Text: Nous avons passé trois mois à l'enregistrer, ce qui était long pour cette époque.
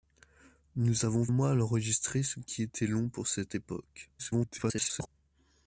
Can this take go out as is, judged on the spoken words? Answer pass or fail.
fail